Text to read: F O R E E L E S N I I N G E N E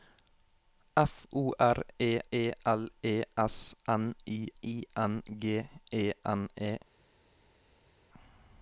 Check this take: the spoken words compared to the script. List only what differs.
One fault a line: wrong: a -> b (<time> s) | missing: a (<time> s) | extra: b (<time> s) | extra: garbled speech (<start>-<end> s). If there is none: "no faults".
no faults